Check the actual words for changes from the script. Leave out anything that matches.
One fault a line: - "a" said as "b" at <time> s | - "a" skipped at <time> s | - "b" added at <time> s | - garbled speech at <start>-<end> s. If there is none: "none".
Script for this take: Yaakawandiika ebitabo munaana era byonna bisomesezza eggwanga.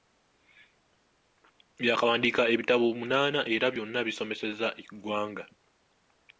none